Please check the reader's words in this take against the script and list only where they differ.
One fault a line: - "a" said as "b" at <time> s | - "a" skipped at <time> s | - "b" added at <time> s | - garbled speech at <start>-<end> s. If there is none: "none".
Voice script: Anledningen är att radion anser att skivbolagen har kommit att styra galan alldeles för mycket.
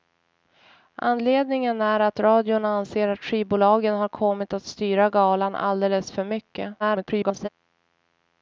- garbled speech at 6.8-7.5 s